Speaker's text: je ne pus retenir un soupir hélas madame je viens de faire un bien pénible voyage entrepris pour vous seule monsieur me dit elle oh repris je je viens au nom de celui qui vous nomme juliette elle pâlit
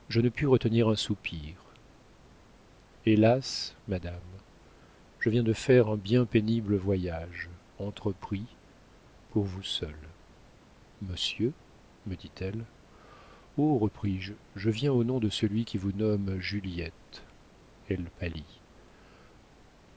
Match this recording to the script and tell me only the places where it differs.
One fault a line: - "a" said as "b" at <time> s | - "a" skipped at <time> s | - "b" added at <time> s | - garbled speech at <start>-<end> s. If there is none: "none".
none